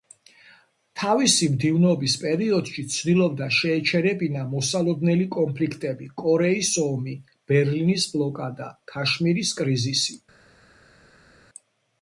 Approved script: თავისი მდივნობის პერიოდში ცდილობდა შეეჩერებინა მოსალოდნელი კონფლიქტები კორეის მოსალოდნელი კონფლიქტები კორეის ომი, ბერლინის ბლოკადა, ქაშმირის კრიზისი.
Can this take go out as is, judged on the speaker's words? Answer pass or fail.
fail